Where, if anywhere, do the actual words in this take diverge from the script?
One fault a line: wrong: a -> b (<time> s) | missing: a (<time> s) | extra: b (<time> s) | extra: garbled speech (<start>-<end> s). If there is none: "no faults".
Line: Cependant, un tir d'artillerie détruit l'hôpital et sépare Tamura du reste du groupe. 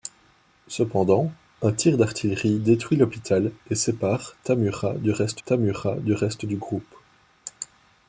extra: Tamura du reste (5.4 s)